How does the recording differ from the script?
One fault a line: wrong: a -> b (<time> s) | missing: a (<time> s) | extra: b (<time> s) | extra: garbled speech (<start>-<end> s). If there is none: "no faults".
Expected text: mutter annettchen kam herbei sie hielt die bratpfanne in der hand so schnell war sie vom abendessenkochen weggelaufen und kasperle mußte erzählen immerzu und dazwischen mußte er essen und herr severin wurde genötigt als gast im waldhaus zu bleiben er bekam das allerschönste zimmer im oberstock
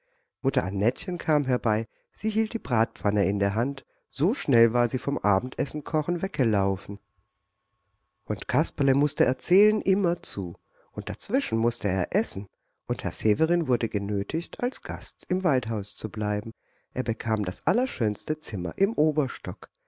no faults